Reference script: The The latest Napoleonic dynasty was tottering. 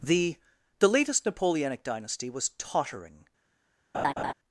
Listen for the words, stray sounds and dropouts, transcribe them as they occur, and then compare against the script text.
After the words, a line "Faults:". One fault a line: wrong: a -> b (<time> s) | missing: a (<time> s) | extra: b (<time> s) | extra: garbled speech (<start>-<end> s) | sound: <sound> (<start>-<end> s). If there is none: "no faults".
The The latest Napoleonic dynasty was tottering.
Faults:
sound: laugh (3.9-4.3 s)